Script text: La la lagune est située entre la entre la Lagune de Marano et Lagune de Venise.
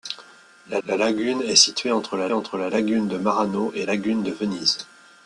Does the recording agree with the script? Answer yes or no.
yes